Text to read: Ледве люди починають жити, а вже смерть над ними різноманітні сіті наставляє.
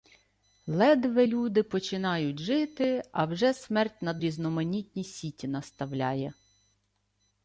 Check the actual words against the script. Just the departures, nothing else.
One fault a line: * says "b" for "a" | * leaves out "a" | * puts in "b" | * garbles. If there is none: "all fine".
* leaves out "ними"